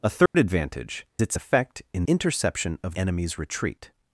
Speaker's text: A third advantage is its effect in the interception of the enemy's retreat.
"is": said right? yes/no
no